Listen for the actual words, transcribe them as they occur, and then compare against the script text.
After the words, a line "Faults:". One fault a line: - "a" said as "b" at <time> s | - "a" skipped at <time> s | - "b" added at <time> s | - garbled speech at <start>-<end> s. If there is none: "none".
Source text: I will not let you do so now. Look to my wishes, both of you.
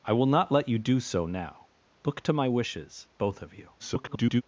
I will not let you do so now. Look to my wishes, both of you. [garbled]
Faults:
- garbled speech at 3.8-4.4 s